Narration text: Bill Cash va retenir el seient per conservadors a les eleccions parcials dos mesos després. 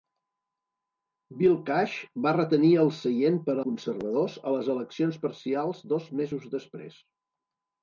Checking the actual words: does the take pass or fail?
pass